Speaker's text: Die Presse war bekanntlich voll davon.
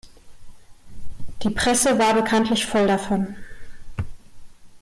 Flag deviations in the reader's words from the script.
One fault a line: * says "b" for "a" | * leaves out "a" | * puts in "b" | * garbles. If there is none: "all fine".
all fine